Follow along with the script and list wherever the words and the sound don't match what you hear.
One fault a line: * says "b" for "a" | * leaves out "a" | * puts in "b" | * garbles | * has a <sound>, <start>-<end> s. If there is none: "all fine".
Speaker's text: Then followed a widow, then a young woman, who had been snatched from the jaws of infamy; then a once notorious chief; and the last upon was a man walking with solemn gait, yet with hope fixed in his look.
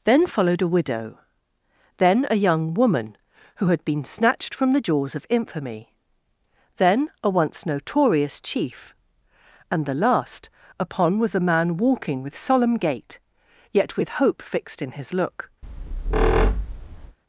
* has a squeak, 15.6-17.2 s